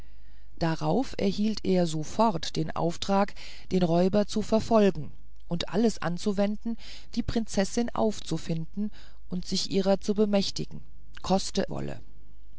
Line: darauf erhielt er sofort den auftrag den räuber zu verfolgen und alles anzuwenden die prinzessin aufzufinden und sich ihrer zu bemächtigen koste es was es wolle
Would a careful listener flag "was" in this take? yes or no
yes